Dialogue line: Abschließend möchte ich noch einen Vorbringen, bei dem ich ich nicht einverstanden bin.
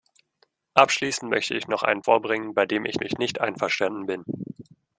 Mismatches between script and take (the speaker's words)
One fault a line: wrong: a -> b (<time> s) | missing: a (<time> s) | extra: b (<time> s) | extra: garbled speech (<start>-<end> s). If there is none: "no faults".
no faults